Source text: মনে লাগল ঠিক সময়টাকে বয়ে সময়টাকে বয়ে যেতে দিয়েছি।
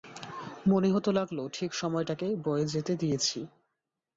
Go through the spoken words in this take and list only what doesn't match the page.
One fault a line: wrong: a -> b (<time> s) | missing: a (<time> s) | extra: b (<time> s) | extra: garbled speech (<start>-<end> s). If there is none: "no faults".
extra: হতে (0.9 s)
missing: সময়টাকে বয়ে (2.6 s)